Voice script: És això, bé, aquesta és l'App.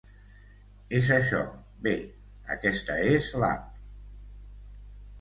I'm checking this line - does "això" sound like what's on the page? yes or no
yes